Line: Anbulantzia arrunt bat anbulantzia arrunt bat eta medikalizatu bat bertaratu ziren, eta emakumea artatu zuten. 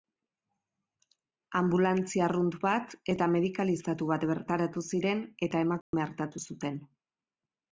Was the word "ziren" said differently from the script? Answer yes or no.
no